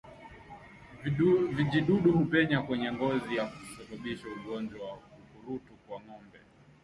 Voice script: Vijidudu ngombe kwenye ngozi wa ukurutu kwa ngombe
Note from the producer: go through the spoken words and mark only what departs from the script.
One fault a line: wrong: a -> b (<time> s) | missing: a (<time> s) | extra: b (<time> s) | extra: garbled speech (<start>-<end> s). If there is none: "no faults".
wrong: ngombe -> hupenya (2.1 s)
extra: na kusababisha ugonjwa (3.3 s)